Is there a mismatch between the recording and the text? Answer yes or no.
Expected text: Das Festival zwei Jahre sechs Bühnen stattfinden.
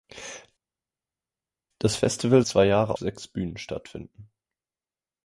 no